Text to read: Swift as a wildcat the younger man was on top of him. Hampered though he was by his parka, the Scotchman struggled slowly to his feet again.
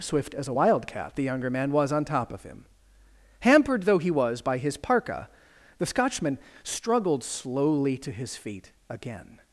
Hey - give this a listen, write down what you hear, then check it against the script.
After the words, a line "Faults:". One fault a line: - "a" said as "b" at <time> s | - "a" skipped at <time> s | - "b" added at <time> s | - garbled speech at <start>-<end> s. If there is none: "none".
Swift as a wildcat the younger man was on top of him. Hampered though he was by his parka, the Scotchman struggled slowly to his feet again.
Faults:
none